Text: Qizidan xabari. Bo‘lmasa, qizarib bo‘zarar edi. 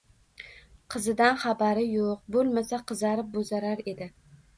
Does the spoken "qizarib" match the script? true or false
true